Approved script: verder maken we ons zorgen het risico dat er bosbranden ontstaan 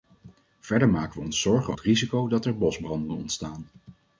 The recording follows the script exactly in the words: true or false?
true